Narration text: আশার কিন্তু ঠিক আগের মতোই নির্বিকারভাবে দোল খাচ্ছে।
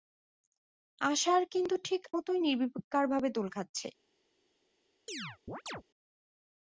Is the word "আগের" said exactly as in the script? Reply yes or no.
no